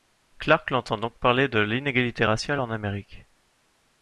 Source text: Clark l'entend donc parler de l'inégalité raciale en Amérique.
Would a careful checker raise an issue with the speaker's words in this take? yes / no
no